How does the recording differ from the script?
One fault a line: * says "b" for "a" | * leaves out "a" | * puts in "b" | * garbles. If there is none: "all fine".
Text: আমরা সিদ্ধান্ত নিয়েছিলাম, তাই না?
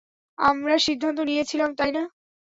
all fine